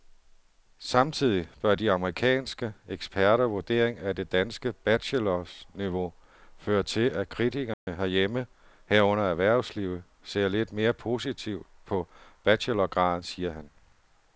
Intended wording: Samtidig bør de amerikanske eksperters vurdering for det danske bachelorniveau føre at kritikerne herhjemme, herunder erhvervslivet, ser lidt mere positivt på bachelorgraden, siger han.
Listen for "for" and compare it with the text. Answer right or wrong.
wrong